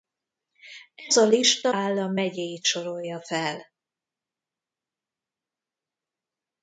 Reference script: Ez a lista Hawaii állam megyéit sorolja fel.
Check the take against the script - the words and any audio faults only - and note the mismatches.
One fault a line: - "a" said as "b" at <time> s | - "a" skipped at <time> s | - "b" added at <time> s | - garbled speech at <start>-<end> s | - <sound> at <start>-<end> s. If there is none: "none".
- "Hawaii" skipped at 1.7 s